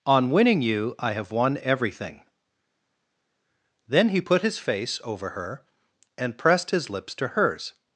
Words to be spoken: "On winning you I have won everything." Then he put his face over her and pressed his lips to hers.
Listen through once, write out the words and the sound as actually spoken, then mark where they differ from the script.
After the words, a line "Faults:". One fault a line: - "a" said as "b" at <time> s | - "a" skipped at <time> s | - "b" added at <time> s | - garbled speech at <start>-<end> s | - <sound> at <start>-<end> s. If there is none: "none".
"On winning you I have won everything." Then he put his face over her and pressed his lips to hers.
Faults:
none